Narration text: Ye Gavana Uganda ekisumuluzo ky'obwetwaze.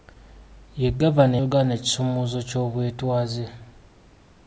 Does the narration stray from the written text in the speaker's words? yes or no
no